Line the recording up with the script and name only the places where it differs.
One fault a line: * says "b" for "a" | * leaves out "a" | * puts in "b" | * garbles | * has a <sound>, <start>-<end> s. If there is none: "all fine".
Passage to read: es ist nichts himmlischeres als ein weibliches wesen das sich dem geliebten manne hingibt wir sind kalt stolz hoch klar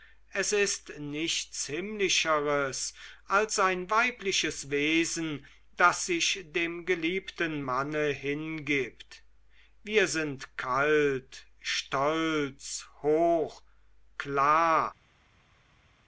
all fine